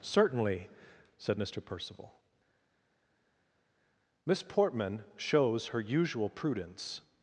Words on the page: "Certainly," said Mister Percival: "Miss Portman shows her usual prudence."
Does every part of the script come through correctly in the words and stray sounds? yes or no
yes